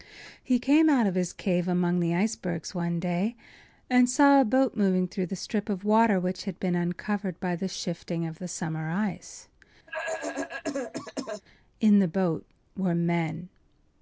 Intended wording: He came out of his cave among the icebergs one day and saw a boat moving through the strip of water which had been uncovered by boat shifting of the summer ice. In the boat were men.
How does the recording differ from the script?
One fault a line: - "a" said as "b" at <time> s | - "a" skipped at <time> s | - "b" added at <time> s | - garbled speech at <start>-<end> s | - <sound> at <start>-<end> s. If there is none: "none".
- "boat" said as "the" at 7.6 s
- cough at 9.9-11.4 s